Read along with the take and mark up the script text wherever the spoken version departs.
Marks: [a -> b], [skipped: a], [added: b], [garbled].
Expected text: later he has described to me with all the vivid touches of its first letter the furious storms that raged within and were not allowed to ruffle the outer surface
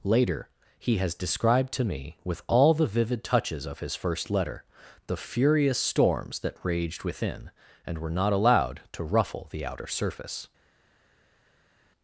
later he has described to me with all the vivid touches of [its -> his] first letter the furious storms that raged within and were not allowed to ruffle the outer surface